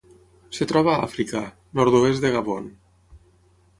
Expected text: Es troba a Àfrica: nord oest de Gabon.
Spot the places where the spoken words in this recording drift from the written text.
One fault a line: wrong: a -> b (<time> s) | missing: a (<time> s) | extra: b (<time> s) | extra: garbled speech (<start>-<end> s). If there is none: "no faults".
no faults